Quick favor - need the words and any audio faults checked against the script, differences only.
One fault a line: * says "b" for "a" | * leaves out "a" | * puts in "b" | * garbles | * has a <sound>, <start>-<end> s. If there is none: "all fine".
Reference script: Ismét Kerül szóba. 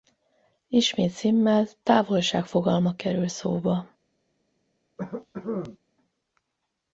* puts in "Simmel távolság fogalma"
* has a cough, 5.0-5.8 s